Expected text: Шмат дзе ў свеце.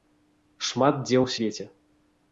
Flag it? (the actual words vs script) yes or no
no